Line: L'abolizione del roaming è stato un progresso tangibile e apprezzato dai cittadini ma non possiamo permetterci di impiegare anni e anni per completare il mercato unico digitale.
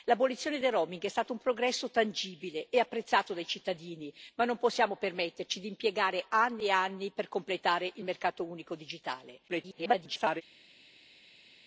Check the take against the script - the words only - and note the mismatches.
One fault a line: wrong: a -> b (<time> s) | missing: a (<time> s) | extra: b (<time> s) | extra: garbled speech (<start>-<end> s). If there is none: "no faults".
extra: garbled speech (9.5-10.4 s)